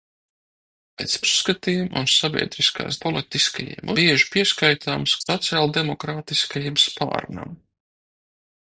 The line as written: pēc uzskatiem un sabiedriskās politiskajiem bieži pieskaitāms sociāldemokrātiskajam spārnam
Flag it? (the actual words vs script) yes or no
no